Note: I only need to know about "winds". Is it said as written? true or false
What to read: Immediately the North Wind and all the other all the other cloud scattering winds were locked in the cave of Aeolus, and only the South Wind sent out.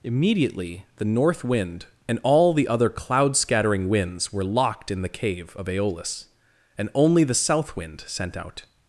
true